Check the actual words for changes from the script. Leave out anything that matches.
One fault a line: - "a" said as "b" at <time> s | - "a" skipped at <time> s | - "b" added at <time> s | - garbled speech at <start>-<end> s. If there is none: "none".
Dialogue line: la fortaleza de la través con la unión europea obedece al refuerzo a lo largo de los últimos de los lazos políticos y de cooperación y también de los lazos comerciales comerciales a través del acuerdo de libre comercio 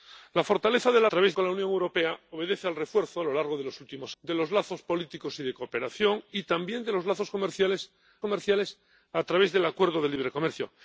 none